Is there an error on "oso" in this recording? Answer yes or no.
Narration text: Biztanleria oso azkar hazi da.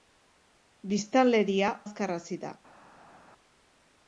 yes